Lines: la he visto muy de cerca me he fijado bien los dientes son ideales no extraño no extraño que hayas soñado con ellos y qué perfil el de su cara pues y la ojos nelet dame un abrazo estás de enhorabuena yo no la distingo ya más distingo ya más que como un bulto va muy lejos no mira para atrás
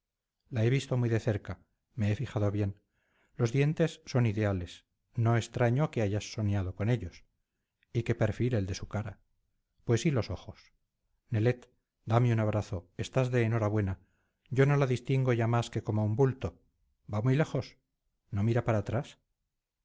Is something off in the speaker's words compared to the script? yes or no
yes